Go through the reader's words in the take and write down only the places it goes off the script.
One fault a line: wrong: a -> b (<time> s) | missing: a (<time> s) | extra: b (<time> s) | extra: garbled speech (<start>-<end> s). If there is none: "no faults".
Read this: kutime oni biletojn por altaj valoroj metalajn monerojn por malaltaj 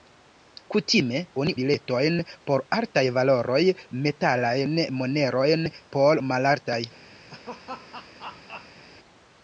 no faults